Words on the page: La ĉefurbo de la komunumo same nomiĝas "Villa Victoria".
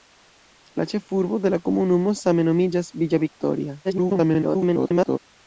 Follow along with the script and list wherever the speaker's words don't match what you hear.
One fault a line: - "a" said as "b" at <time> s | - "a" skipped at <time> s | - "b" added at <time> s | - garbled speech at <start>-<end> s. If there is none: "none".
- garbled speech at 3.8-5.2 s